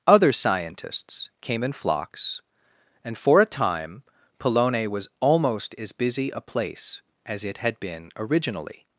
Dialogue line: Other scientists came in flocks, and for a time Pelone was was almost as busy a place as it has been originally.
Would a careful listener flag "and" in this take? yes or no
no